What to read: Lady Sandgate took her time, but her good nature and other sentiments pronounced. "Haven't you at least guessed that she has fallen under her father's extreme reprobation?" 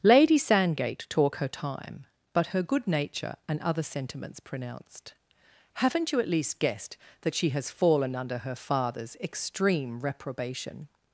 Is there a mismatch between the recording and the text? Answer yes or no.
yes